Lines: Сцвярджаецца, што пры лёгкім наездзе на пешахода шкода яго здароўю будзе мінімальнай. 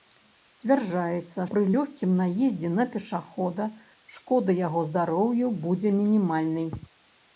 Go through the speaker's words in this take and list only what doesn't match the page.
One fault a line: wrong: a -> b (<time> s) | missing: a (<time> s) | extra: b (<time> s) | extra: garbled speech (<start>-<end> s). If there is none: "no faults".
missing: што (1.4 s)